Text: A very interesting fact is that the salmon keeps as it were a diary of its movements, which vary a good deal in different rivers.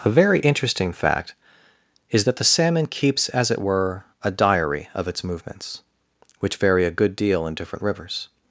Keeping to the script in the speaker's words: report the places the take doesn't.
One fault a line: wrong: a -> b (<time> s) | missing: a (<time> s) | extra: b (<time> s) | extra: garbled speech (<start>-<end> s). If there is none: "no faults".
no faults